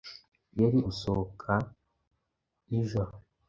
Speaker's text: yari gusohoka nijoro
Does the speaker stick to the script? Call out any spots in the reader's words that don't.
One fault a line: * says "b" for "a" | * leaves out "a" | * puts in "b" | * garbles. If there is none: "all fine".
all fine